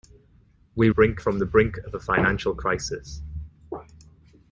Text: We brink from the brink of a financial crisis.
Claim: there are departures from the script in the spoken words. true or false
false